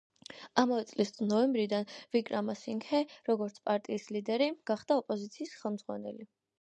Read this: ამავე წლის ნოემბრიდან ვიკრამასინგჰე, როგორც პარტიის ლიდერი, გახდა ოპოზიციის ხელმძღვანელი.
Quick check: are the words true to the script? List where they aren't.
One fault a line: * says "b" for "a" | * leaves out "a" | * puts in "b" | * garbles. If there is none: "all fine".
all fine